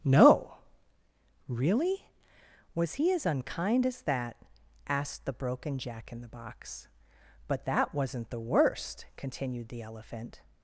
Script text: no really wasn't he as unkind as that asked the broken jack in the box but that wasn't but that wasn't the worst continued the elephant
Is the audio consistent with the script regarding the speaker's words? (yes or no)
no